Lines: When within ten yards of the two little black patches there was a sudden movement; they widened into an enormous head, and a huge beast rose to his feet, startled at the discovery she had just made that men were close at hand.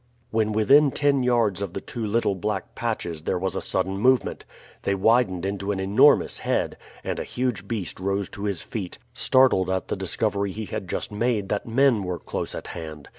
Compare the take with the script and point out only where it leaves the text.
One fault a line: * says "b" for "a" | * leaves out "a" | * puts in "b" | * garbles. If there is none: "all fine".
* says "he" for "she"